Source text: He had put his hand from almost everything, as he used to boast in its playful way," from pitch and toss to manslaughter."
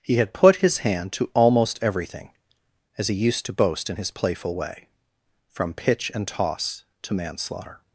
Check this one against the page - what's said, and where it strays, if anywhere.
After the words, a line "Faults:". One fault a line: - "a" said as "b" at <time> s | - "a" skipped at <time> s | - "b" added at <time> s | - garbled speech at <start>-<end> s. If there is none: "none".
He had put his hand to almost everything, as he used to boast in his playful way," from pitch and toss to manslaughter."
Faults:
- "from" said as "to" at 1.1 s
- "its" said as "his" at 4.0 s